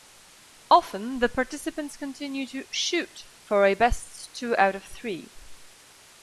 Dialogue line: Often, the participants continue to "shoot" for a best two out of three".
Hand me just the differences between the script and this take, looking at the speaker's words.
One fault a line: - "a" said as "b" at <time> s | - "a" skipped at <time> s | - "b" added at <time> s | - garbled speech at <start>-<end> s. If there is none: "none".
none